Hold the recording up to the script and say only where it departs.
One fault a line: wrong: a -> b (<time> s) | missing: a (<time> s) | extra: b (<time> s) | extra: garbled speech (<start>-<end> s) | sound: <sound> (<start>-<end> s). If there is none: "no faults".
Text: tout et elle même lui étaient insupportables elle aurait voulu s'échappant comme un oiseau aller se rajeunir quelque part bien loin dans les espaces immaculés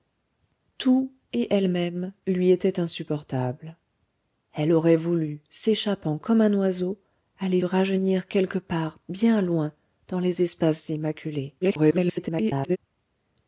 missing: se (7.6 s)
extra: garbled speech (11.6-12.8 s)